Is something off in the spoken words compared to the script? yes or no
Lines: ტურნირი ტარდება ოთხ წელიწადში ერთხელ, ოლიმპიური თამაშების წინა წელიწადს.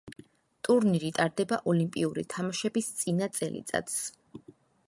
yes